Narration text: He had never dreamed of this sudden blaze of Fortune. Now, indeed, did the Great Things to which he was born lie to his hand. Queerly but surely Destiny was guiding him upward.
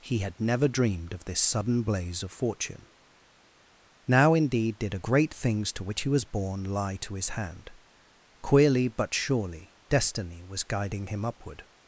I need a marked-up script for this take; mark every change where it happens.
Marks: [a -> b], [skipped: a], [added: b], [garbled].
He had never dreamed of this sudden blaze of Fortune. Now, indeed, did [the -> a] Great Things to which he was born lie to his hand. Queerly but surely Destiny was guiding him upward.